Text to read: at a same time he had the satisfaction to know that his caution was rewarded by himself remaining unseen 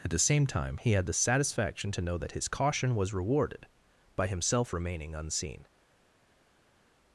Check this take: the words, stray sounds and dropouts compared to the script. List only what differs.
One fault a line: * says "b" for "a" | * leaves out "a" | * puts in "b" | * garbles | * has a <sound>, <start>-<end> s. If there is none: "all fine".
* says "the" for "a"